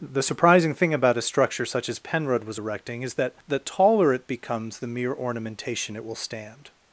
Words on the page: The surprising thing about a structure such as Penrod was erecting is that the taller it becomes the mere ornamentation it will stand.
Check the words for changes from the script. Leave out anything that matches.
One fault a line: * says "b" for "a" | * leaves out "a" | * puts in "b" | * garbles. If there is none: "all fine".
all fine